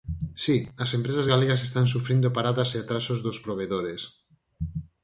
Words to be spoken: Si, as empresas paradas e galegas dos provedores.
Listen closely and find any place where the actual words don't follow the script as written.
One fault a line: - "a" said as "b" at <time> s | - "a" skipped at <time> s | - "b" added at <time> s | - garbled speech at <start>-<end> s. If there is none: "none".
- "galegas están sufrindo" added at 1.3 s
- "galegas" said as "atrasos" at 2.8 s